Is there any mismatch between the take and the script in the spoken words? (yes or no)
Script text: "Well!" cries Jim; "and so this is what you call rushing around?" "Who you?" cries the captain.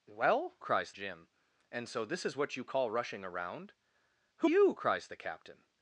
no